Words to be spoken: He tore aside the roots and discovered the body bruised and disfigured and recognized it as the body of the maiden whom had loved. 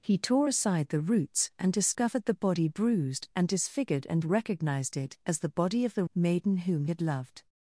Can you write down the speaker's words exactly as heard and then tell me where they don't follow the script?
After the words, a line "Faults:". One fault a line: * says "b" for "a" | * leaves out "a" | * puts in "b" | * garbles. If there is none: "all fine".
He tore aside the roots and discovered the body bruised and disfigured and recognized it as the body of the maiden whom had loved.
Faults:
all fine